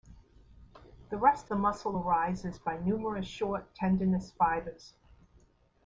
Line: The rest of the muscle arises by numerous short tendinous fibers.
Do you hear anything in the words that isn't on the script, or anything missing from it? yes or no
yes